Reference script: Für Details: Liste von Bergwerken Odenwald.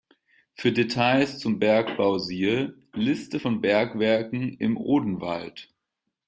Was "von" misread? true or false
false